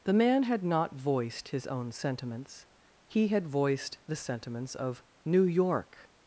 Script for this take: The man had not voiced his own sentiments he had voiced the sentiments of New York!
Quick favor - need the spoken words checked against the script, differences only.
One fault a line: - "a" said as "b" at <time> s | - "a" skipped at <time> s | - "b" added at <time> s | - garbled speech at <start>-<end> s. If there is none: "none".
none